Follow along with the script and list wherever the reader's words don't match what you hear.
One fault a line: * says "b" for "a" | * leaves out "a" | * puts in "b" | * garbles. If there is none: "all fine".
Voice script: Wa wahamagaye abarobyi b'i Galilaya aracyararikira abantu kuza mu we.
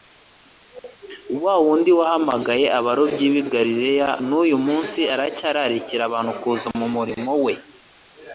* puts in "wundi"
* puts in "n'uyu munsi"
* puts in "murimo"